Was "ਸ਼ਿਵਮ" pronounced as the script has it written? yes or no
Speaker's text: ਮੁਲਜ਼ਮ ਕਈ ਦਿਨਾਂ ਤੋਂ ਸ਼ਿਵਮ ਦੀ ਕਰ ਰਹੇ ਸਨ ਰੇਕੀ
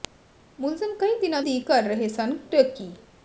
no